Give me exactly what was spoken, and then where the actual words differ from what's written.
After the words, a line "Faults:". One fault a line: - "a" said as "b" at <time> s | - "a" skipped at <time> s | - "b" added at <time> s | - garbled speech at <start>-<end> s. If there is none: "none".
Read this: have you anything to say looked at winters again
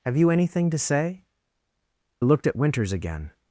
have you anything to say looked at winters again
Faults:
none